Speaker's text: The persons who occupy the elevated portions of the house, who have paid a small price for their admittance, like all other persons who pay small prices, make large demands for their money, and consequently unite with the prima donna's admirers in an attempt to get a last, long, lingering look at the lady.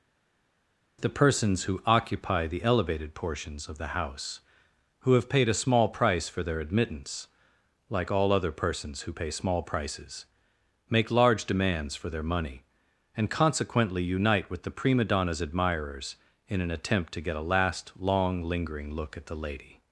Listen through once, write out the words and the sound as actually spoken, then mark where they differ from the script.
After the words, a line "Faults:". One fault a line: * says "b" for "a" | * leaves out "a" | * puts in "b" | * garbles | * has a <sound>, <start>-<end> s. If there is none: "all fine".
The persons who occupy the elevated portions of the house, who have paid a small price for their admittance, like all other persons who pay small prices, make large demands for their money, and consequently unite with the prima donna's admirers in an attempt to get a last, long, lingering look at the lady.
Faults:
all fine